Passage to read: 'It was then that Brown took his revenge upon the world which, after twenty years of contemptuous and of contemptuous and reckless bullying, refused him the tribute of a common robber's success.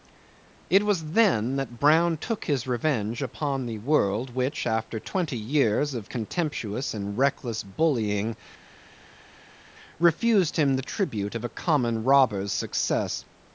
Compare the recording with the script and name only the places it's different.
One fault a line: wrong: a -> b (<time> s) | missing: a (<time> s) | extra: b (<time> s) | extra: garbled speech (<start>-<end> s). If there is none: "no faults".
missing: of contemptuous and (7.2 s)